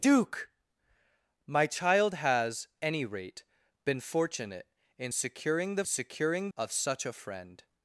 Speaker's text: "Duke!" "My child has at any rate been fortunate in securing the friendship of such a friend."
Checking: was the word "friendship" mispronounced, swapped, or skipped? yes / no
yes